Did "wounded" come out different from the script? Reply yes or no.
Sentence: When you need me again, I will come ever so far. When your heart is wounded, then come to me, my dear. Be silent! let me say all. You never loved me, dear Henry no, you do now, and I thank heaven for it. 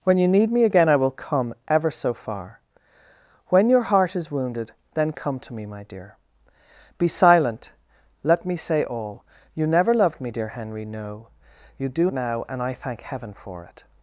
no